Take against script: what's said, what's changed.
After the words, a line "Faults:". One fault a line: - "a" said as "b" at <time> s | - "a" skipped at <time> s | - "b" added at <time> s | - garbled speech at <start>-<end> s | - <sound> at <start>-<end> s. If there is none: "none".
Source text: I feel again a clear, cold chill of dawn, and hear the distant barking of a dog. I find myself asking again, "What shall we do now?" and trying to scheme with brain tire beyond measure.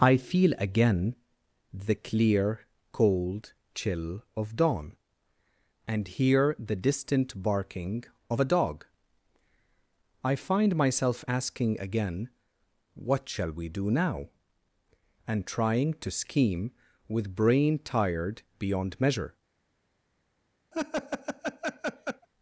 I feel again the clear, cold chill of dawn, and hear the distant barking of a dog. I find myself asking again, "What shall we do now?" and trying to scheme with brain tired beyond measure.
Faults:
- "a" said as "the" at 1.7 s
- "tire" said as "tired" at 17.8 s
- laugh at 20.7-22.3 s